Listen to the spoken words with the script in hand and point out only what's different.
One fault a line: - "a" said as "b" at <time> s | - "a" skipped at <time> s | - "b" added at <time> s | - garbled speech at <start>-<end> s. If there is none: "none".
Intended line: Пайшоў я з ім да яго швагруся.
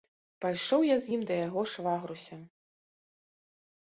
none